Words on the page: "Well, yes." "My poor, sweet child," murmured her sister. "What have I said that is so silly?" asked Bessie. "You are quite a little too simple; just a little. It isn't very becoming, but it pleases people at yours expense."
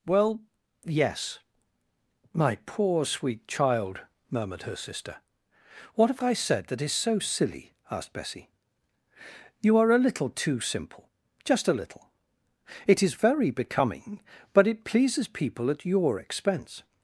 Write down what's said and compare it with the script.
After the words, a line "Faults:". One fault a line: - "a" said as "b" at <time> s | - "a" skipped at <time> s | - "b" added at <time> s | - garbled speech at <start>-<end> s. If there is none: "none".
"Well, yes." "My poor, sweet child," murmured her sister. "What have I said that is so silly?" asked Bessie. "You are a little too simple; just a little. It is very becoming, but it pleases people at your expense."
Faults:
- "quite" skipped at 9.9 s
- "isn't" said as "is" at 13.0 s
- "yours" said as "your" at 15.8 s